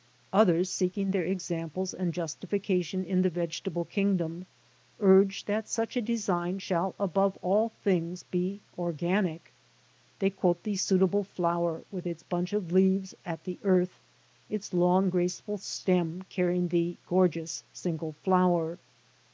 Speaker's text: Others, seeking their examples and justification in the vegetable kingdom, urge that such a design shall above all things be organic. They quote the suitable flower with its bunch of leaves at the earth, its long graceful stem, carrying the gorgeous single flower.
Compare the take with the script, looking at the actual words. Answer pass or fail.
pass